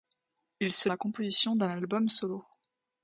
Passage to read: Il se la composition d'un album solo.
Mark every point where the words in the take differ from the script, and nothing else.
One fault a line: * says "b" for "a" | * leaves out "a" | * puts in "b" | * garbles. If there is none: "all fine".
all fine